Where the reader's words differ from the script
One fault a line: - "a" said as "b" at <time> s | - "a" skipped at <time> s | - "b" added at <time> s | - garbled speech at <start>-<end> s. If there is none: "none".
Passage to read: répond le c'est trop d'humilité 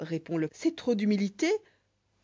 none